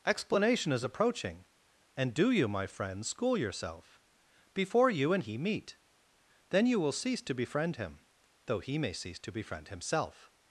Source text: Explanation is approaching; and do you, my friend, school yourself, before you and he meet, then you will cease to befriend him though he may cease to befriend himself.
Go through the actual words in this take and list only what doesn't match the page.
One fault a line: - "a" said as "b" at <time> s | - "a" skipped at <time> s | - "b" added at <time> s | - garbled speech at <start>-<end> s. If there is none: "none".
none